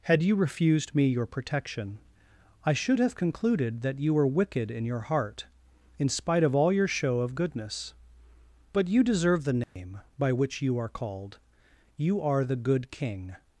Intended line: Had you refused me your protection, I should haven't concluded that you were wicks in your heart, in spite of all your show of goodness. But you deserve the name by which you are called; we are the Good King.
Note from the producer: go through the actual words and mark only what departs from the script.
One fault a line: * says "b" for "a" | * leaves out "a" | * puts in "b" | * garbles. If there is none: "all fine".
* says "have" for "haven't"
* says "wicked" for "wicks"
* says "you" for "we"